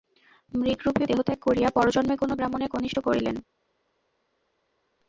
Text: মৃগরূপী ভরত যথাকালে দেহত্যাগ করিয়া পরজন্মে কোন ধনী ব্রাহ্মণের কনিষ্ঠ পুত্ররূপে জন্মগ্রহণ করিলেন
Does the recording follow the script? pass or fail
fail